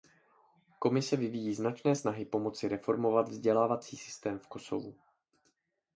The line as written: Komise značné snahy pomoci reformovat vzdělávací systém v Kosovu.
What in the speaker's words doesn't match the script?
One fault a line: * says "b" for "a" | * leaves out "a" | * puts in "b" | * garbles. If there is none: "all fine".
* puts in "vyvíjí"